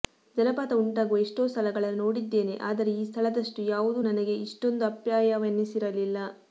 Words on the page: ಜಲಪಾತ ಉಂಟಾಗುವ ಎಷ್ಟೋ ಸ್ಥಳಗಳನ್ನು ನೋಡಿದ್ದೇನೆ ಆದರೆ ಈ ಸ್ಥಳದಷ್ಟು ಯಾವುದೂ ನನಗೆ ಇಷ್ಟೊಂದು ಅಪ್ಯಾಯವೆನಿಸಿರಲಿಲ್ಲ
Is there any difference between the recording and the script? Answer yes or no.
no